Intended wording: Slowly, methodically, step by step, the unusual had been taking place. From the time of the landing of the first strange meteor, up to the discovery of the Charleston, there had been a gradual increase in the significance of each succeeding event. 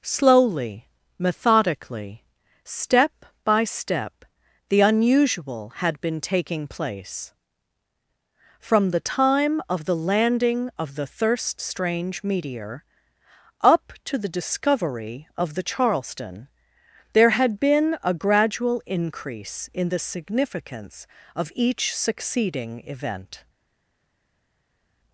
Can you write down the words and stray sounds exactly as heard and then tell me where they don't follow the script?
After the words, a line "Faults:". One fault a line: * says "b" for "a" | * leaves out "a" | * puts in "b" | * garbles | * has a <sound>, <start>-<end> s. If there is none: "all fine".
Slowly, methodically, step by step, the unusual had been taking place. From the time of the landing of the thirst strange meteor, up to the discovery of the Charleston, there had been a gradual increase in the significance of each succeeding event.
Faults:
* says "thirst" for "first"